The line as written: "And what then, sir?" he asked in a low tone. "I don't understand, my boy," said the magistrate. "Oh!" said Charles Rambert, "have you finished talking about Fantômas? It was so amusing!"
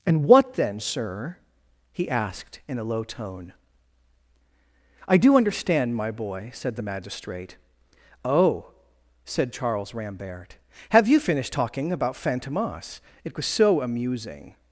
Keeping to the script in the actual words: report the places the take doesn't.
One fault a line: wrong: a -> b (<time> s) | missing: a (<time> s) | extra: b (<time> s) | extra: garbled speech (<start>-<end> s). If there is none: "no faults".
wrong: don't -> do (5.2 s)